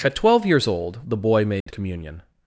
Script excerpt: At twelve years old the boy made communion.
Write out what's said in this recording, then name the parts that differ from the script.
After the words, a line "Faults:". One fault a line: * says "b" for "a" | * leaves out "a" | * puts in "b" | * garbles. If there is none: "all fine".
At twelve years old the boy made communion.
Faults:
all fine